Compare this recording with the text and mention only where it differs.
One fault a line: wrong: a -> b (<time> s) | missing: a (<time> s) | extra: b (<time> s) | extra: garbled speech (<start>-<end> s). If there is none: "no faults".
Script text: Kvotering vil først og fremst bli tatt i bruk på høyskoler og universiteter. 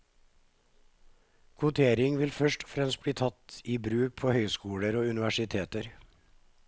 no faults